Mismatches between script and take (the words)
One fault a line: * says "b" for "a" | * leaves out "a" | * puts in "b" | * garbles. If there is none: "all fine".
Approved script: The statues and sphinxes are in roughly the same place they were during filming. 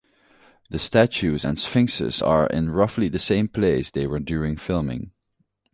all fine